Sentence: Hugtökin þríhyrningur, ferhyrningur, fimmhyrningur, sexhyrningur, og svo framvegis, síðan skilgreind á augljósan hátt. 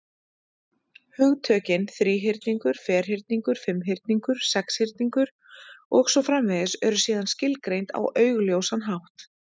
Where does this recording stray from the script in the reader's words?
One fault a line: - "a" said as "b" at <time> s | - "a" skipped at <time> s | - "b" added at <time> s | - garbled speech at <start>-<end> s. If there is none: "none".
- "eru" added at 6.9 s